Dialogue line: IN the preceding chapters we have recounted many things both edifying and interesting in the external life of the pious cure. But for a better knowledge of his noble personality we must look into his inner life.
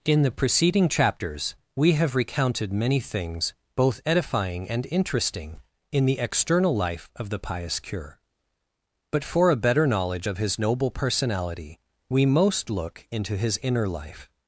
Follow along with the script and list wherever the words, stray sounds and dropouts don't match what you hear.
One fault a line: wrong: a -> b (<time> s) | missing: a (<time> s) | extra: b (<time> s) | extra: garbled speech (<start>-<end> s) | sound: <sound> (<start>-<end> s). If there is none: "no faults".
wrong: must -> most (12.2 s)